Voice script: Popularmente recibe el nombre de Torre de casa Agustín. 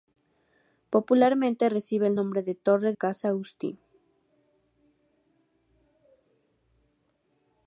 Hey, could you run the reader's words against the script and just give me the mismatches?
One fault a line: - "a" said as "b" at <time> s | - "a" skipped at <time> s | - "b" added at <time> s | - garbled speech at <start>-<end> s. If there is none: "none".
- "de" skipped at 2.9 s